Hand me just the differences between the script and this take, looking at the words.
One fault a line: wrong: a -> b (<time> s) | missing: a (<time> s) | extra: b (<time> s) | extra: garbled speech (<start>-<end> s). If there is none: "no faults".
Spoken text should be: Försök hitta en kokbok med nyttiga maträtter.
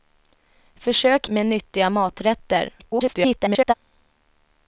missing: hitta en kokbok (1.3 s)
extra: garbled speech (2.8-3.7 s)